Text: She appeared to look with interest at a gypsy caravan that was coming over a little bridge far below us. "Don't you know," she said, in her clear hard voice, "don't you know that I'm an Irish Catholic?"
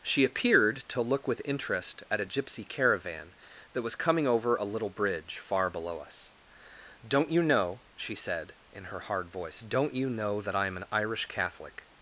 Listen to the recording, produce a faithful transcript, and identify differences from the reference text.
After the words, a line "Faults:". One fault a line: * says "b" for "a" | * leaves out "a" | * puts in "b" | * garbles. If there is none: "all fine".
She appeared to look with interest at a gypsy caravan that was coming over a little bridge far below us. "Don't you know," she said, in her hard voice, "don't you know that I'm an Irish Catholic?"
Faults:
* leaves out "clear"